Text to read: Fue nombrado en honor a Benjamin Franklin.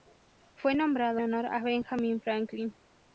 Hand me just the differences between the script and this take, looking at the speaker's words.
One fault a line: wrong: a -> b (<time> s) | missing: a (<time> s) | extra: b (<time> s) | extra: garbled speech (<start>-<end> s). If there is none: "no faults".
missing: en (1.2 s)